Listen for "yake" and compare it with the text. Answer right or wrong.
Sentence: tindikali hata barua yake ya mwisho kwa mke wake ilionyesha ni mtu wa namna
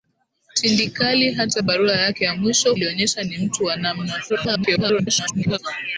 right